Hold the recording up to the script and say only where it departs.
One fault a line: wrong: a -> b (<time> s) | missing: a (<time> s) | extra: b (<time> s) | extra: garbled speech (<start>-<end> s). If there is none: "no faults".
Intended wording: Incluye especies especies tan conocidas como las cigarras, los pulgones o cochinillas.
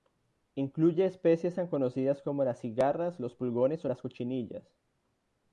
missing: especies (1.5 s)
extra: las (3.9 s)